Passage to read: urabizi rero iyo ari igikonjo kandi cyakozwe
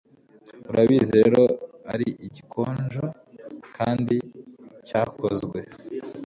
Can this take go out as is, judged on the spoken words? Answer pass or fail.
fail